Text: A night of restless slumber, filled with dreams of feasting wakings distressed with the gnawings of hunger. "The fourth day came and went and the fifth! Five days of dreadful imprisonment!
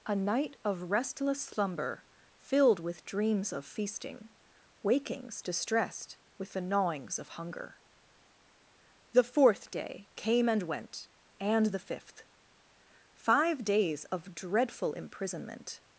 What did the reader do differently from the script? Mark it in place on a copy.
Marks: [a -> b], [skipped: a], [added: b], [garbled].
A night of restless slumber, filled with dreams of feasting wakings distressed with the gnawings of hunger. "The fourth day came and went and the fifth! Five days of dreadful imprisonment!